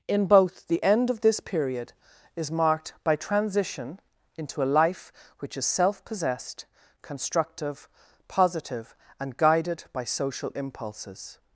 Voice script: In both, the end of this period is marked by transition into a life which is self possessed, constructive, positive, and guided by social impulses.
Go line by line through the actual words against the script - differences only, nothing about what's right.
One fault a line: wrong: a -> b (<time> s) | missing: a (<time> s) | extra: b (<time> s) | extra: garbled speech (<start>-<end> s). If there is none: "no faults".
no faults